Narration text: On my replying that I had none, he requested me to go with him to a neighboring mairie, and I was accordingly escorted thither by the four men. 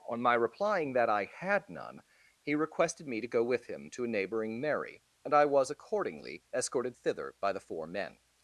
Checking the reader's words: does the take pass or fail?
pass